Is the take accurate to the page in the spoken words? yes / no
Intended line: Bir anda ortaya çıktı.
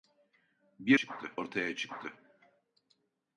no